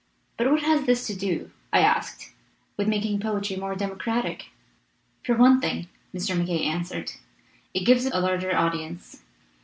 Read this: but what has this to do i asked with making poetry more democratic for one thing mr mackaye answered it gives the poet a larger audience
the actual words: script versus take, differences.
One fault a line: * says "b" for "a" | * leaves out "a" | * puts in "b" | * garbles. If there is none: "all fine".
* leaves out "poet"